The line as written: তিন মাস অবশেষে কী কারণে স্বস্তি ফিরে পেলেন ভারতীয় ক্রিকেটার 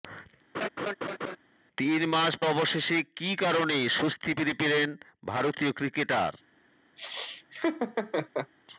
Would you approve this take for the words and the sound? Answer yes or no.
no